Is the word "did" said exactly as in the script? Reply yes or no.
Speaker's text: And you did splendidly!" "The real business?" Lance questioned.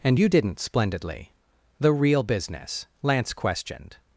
no